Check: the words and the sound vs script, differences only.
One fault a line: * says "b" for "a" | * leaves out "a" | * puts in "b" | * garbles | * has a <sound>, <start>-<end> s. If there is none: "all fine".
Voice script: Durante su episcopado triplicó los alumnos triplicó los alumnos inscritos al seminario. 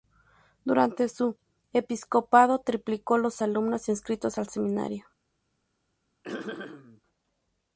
* leaves out "triplicó los alumnos"
* has a throat clearing, 6.2-7.0 s